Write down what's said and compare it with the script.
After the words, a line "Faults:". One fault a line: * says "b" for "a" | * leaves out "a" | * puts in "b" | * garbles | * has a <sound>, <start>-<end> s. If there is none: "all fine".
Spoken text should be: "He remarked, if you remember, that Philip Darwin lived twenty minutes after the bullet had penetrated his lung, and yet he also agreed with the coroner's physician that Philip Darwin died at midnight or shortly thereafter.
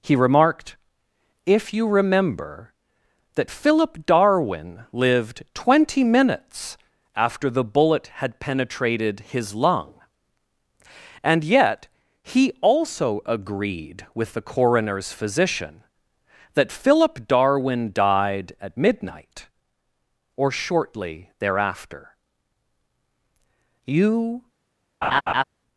"He remarked, if you remember, that Philip Darwin lived twenty minutes after the bullet had penetrated his lung, and yet he also agreed with the coroner's physician that Philip Darwin died at midnight or shortly thereafter. You
Faults:
* puts in "You"
* has a laugh, 25.0-25.4 s